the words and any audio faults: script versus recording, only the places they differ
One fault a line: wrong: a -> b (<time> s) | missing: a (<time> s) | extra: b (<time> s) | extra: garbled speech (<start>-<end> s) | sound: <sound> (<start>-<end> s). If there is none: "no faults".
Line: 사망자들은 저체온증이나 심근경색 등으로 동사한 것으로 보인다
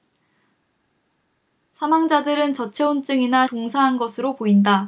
missing: 심근경색 등으로 (3.5 s)